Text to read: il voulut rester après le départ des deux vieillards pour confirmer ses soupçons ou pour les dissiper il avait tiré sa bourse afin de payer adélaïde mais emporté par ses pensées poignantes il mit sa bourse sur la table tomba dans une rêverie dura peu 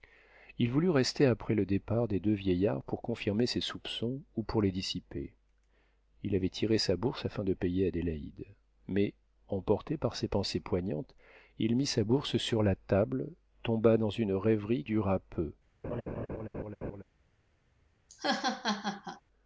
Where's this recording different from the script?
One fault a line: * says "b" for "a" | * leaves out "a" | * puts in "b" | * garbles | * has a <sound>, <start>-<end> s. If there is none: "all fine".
* has a laugh, 15.8-17.0 s
* has a laugh, 18.1-19.2 s